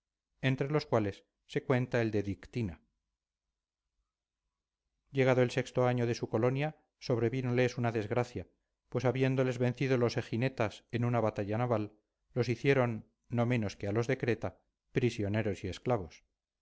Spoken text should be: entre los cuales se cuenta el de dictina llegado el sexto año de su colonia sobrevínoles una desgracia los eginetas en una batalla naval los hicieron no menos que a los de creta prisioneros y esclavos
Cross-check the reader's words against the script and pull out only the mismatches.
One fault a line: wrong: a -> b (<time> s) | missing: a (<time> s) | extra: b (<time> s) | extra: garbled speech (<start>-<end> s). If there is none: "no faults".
extra: pues habiéndoles vencido (8.9 s)